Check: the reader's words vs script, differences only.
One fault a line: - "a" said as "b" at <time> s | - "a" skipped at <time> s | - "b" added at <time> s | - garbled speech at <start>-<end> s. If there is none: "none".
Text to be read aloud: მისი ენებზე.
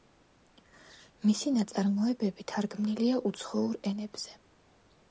- "ნაწარმოებები თარგმნილია უცხოურ" added at 1.6 s